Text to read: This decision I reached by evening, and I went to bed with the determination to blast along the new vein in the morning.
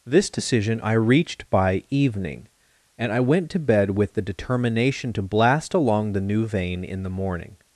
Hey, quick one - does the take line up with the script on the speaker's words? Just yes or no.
yes